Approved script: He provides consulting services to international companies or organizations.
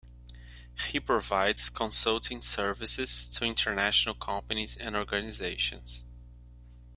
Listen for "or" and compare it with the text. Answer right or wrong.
wrong